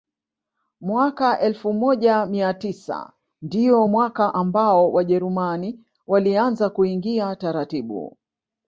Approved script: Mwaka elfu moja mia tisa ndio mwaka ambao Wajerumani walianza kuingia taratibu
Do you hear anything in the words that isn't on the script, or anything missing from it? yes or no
no